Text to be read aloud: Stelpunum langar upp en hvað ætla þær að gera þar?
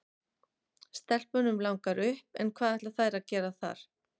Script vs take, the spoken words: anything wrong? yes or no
no